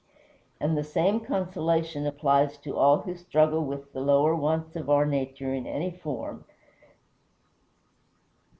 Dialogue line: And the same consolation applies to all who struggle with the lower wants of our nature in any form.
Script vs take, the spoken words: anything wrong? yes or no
no